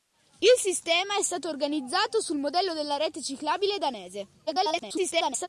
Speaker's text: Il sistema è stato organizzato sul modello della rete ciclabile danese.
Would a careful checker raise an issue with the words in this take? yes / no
yes